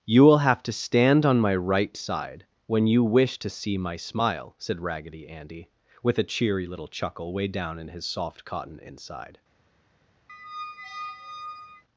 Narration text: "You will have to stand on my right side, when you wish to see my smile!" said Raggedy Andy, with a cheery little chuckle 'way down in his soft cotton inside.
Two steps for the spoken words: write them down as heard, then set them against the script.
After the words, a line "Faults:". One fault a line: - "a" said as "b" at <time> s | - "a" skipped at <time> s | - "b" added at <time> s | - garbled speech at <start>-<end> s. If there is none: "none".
"You will have to stand on my right side, when you wish to see my smile!" said Raggedy Andy, with a cheery little chuckle 'way down in his soft cotton inside.
Faults:
none